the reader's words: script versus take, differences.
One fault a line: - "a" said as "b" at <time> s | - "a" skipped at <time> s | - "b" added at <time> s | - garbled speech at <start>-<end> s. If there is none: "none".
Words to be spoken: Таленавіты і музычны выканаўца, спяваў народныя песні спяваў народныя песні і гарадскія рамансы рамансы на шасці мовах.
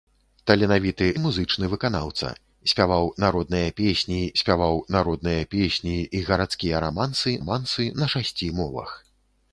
none